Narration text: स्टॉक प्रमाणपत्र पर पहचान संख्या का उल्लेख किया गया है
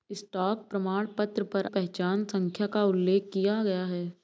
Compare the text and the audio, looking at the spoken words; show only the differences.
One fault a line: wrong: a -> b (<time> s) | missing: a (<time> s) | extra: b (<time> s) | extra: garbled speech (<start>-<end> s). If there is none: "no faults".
no faults